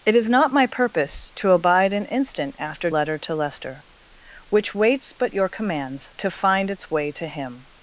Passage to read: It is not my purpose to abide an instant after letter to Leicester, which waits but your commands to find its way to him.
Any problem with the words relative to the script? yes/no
no